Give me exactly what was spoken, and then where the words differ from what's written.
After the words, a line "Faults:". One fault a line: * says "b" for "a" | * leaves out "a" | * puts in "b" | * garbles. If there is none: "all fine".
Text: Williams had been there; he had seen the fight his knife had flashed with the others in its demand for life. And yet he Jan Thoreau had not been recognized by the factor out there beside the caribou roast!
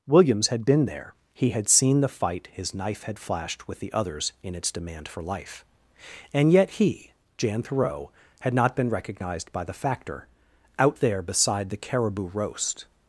Williams had been there; he had seen the fight his knife had flashed with the others in its demand for life. And yet he Jan Thoreau had not been recognized by the factor out there beside the caribou roast!
Faults:
all fine